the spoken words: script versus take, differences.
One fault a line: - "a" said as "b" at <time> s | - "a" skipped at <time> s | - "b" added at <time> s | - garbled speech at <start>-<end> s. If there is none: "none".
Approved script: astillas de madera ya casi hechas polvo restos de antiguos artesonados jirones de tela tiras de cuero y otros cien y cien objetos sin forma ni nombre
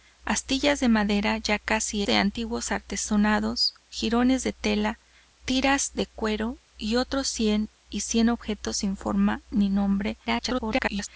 - "hechas polvo restos" skipped at 2.0 s
- garbled speech at 10.3-11.1 s